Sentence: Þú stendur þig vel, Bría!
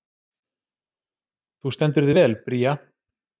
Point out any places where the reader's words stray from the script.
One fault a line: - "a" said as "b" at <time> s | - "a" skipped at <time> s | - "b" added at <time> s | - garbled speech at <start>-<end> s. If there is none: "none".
none